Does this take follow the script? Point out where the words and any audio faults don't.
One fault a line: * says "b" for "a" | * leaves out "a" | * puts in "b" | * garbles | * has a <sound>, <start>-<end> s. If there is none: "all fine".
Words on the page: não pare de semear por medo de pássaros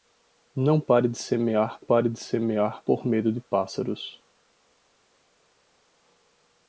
* puts in "pare de semear"